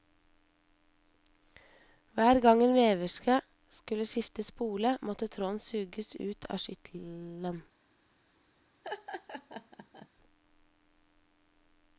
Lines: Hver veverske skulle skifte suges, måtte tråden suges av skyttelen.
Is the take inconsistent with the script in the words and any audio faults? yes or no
yes